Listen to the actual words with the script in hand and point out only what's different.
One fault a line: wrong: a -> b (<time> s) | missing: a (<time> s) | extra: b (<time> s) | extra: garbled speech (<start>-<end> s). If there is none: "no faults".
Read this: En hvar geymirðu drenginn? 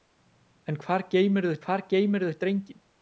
extra: hvar geymirðu (1.6 s)